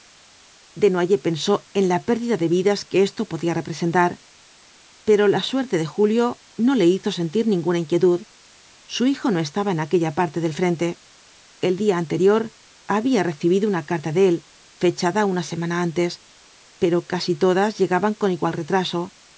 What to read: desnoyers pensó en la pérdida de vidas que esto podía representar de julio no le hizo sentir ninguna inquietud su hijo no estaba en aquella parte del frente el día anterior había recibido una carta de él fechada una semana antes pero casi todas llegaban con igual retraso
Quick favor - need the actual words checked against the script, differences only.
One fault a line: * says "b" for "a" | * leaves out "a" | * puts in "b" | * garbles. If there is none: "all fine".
* puts in "pero la suerte"